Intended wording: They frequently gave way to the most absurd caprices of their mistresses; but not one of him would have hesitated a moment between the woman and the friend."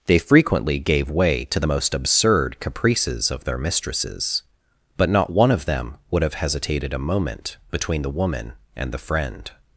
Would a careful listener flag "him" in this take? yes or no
yes